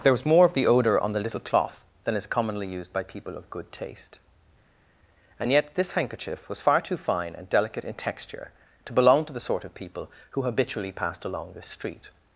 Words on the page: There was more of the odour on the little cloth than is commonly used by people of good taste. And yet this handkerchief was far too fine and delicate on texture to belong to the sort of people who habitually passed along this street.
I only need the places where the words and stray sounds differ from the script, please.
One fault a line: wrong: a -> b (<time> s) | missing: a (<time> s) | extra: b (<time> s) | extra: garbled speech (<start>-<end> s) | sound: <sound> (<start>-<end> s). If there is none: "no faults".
wrong: on -> in (7.8 s)